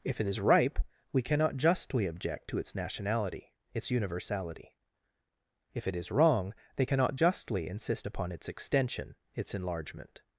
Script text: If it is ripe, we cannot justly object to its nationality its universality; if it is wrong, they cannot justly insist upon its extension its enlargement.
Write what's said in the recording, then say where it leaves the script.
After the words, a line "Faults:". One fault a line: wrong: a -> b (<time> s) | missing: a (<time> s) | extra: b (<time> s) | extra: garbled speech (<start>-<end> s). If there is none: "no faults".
If it is ripe, we cannot justly object to its nationality its universality; if it is wrong, they cannot justly insist upon its extension its enlargement.
Faults:
no faults